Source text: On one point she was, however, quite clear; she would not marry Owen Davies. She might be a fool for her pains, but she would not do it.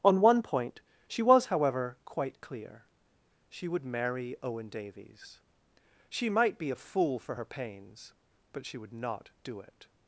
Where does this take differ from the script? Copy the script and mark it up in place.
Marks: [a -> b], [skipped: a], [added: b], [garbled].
On one point she was, however, quite clear; she would [skipped: not] marry Owen Davies. She might be a fool for her pains, but she would not do it.